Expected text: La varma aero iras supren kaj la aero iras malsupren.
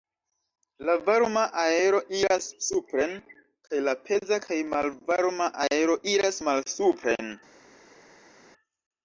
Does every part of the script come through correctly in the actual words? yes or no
no